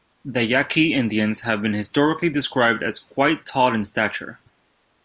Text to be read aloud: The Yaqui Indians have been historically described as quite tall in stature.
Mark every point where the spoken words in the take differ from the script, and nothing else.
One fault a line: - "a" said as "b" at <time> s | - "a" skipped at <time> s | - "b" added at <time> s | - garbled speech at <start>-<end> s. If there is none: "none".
none